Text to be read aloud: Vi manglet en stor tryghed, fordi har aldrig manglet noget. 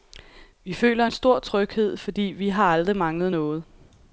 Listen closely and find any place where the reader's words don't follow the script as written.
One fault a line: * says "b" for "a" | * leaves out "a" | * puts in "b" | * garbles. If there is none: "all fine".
* says "føler" for "manglet"
* puts in "vi"